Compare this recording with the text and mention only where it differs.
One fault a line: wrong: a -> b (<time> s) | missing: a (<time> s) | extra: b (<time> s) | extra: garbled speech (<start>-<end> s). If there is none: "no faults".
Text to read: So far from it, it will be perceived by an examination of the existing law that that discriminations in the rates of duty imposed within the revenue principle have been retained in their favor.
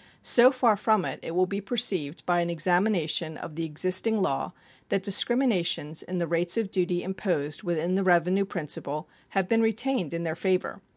missing: that (5.0 s)